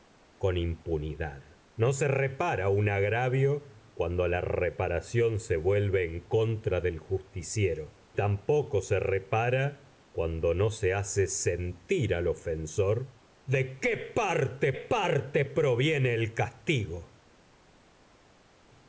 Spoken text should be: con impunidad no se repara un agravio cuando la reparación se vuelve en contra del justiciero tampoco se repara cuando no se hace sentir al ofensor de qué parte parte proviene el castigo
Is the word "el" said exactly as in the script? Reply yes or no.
yes